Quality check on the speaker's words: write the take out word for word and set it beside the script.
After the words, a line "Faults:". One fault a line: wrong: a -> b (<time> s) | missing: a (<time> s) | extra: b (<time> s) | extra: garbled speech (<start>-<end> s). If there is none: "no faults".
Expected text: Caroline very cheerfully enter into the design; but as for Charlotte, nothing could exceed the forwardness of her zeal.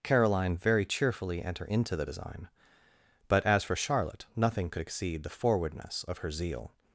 Caroline very cheerfully enter into the design; but as for Charlotte, nothing could exceed the forwardness of her zeal.
Faults:
no faults